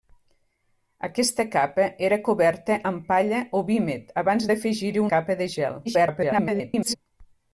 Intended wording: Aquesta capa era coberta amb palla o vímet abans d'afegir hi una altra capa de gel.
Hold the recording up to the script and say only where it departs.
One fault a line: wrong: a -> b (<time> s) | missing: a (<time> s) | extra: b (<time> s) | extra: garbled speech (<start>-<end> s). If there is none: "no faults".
missing: una altra (5.0 s)
extra: garbled speech (5.8-7.0 s)